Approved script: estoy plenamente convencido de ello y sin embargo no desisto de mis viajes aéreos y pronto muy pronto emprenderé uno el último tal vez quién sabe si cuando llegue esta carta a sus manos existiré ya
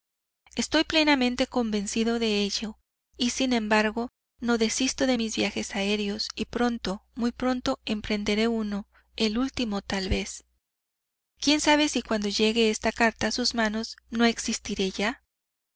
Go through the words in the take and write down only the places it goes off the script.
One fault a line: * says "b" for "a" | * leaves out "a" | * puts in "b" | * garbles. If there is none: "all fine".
* puts in "no"